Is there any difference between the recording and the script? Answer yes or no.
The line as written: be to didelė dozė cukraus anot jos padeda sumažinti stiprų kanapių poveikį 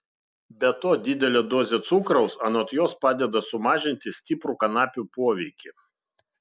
no